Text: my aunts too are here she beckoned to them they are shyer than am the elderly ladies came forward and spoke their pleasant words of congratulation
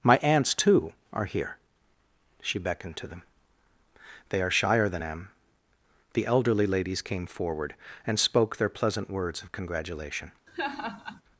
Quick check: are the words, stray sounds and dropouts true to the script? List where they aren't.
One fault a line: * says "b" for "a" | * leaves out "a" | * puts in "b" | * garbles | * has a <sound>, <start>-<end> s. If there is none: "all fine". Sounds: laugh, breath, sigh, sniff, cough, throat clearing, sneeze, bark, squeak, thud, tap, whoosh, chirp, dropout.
* has a laugh, 10.5-11.2 s